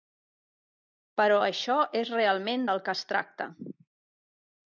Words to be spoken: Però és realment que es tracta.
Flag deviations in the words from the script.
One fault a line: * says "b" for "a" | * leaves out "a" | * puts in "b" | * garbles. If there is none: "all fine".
* puts in "això"
* puts in "del"